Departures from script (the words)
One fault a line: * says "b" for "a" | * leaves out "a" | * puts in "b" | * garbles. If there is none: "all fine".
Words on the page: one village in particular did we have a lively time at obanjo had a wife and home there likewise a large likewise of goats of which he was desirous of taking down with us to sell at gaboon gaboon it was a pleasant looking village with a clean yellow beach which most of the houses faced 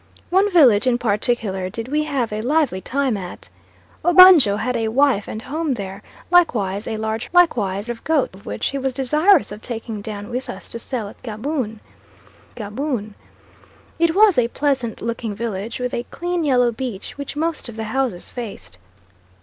all fine